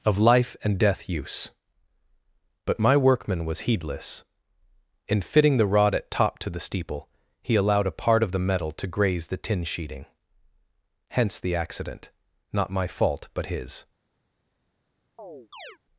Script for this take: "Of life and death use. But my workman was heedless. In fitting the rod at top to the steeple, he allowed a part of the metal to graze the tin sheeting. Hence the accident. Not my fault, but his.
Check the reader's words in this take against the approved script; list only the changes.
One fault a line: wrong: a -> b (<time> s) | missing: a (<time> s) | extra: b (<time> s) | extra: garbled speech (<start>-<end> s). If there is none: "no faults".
no faults